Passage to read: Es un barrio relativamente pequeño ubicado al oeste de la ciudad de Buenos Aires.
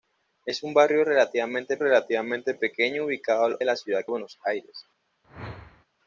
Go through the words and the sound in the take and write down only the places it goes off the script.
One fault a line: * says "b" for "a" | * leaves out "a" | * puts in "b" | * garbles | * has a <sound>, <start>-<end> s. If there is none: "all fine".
* puts in "relativamente"
* leaves out "oeste"
* leaves out "de"
* has a whoosh, 5.2-5.9 s